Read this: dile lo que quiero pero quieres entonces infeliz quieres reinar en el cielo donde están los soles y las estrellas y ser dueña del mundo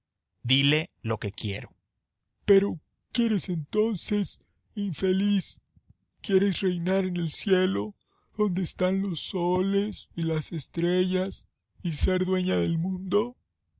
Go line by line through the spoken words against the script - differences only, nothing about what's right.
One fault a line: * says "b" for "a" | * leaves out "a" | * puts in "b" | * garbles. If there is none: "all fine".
all fine